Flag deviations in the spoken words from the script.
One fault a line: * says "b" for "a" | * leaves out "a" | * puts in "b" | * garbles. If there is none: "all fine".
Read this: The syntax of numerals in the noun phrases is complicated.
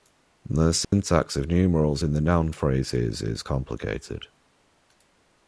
all fine